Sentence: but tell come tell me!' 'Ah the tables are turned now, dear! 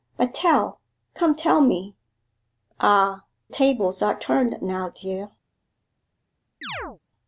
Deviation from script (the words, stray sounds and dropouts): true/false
true